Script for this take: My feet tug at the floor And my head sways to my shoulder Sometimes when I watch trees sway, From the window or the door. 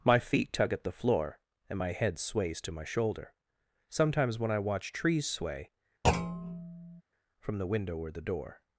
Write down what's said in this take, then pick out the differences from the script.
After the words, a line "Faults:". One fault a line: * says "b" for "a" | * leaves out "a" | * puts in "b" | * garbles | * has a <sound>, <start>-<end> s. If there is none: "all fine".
My feet tug at the floor And my head sways to my shoulder Sometimes when I watch trees sway, From the window or the door.
Faults:
* has a thud, 6.0-7.0 s